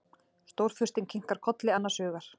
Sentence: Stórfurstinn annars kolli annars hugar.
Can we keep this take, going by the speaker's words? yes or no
no